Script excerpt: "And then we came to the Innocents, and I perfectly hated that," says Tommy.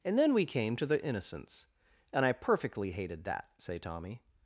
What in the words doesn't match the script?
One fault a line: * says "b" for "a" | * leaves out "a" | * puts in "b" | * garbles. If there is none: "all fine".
* says "say" for "says"